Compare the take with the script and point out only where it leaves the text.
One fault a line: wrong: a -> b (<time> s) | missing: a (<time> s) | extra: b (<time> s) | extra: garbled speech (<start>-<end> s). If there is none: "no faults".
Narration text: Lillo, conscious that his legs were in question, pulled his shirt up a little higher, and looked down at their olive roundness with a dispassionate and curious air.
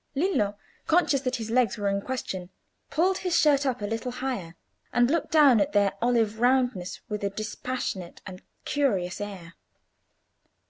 no faults